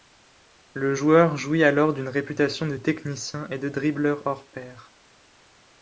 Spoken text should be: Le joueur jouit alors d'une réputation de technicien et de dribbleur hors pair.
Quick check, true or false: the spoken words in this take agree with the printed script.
true